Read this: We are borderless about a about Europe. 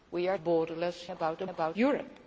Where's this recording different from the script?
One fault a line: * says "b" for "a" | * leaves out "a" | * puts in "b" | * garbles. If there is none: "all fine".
all fine